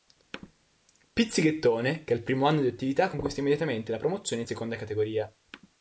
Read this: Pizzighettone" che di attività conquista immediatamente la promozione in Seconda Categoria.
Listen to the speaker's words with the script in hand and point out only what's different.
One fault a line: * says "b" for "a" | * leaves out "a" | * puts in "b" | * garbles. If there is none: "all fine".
* puts in "al primo anno"